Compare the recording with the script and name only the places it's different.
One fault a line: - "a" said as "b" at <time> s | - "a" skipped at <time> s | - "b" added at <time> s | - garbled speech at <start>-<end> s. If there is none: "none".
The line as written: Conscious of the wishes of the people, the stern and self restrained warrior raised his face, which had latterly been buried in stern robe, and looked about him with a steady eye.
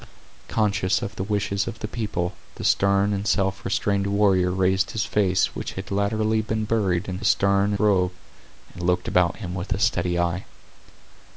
none